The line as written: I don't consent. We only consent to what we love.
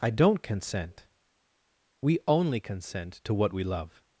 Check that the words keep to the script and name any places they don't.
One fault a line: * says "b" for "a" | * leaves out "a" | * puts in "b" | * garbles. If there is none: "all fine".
all fine